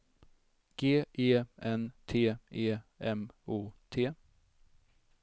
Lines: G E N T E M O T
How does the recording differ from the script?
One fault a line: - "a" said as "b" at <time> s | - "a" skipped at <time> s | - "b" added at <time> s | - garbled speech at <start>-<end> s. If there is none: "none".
none